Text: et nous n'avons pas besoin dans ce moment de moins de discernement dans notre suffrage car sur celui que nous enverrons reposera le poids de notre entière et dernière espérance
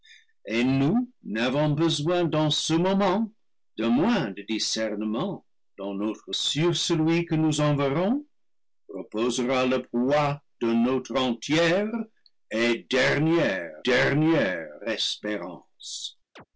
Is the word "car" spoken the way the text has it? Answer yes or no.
no